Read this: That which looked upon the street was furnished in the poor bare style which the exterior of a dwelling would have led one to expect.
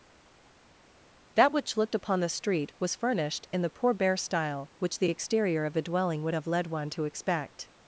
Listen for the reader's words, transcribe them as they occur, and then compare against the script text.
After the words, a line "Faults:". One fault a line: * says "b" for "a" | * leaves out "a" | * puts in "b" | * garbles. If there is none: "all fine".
That which looked upon the street was furnished in the poor bare style which the exterior of a dwelling would have led one to expect.
Faults:
all fine